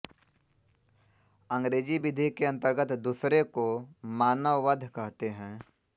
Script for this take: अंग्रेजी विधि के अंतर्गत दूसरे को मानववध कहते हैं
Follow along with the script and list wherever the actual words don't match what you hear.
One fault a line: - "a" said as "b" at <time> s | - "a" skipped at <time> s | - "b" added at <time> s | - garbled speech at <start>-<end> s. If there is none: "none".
none